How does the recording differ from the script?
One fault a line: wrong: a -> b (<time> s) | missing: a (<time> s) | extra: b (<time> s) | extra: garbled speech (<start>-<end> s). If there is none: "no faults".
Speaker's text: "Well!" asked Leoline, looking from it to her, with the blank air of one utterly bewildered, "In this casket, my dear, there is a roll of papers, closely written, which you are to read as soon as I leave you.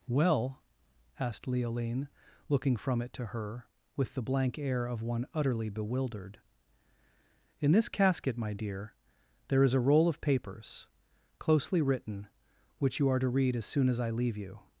no faults